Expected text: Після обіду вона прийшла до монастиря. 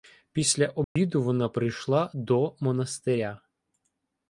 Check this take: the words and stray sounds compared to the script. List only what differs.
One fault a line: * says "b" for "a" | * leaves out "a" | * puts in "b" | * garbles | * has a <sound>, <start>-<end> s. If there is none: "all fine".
* has a dropout, 0.8-1.0 s